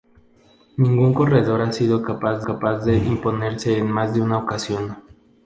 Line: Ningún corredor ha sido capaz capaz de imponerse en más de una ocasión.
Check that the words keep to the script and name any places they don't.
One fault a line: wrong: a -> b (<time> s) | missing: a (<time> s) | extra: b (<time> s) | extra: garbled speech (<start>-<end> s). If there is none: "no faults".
no faults